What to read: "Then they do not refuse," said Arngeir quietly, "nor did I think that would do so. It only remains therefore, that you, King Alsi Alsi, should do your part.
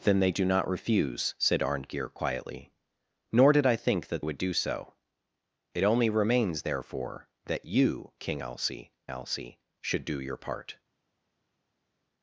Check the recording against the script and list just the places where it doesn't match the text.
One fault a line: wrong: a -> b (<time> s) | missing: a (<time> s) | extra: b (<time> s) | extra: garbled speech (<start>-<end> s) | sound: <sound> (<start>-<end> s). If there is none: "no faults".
no faults